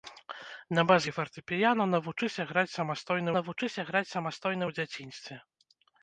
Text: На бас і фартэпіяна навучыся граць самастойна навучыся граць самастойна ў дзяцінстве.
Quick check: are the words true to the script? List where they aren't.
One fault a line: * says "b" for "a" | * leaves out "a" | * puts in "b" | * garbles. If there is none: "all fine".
all fine